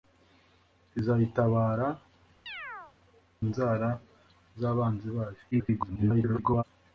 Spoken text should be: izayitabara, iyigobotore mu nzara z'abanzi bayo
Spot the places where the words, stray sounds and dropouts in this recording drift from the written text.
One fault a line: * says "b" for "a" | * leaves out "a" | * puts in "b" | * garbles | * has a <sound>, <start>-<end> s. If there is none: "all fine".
* leaves out "iyigobotore mu"
* has a chirp, 2.5-2.9 s
* garbles